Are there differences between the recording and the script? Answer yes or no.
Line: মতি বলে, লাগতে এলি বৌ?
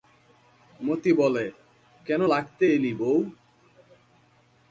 yes